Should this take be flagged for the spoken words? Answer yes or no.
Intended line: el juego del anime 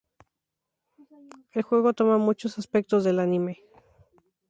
yes